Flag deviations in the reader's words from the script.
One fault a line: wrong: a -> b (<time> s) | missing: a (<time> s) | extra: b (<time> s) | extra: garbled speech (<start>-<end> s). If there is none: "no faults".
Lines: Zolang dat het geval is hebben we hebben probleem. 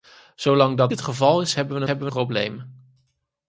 no faults